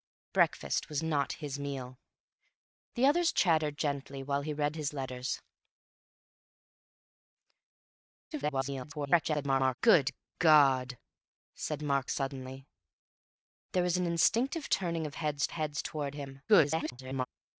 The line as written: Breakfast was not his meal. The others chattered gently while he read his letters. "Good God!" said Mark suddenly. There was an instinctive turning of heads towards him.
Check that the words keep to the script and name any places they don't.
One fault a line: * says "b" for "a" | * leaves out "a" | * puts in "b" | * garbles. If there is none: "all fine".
* garbles
* puts in "heads"
* garbles